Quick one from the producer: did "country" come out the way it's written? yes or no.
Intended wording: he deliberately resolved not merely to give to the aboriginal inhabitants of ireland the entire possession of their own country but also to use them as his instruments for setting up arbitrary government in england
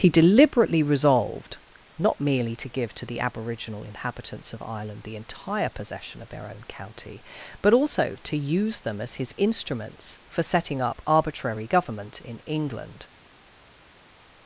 no